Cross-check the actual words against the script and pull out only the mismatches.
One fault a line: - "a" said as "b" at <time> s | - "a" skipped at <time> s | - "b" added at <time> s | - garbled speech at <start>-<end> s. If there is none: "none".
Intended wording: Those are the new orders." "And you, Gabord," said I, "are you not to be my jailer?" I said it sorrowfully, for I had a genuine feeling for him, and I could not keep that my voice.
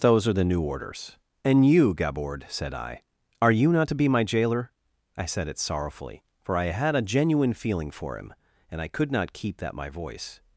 none